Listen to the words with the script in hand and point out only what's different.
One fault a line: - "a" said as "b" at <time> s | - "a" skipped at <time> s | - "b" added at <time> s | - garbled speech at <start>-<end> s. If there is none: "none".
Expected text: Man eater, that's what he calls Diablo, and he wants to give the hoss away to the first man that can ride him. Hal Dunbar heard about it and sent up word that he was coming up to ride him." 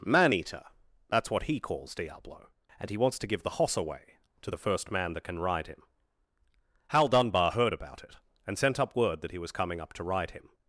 none